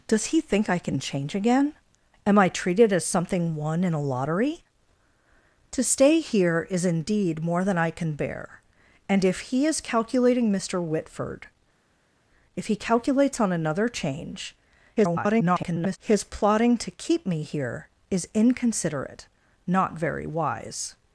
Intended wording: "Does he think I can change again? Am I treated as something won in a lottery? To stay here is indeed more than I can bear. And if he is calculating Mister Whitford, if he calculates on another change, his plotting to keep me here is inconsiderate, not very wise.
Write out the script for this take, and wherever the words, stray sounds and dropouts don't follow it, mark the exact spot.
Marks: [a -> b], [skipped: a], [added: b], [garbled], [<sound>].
"Does he think I can change again? Am I treated as something won in a lottery? To stay here is indeed more than I can bear. And if he is calculating Mister Whitford, if he calculates on another change, [garbled] his plotting to keep me here is inconsiderate, not very wise.